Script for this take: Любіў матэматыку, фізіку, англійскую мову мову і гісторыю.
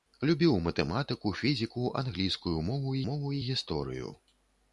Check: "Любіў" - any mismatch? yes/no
no